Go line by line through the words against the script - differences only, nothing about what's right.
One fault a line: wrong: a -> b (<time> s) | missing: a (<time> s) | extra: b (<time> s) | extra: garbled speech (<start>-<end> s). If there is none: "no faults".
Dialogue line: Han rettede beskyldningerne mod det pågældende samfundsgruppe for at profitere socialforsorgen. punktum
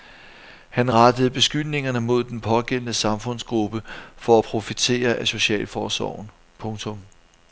wrong: det -> den (2.2 s)
extra: af (5.1 s)